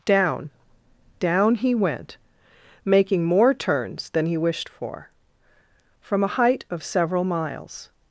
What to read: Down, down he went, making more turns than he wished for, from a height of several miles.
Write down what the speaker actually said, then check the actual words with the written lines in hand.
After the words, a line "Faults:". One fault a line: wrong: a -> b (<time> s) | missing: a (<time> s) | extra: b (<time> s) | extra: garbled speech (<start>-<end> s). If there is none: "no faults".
Down, down he went, making more turns than he wished for, from a height of several miles.
Faults:
no faults